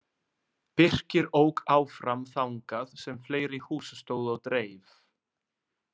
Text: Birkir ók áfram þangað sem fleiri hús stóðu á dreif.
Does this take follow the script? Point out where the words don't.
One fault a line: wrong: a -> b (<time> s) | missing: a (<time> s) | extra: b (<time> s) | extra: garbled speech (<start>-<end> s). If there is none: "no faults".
no faults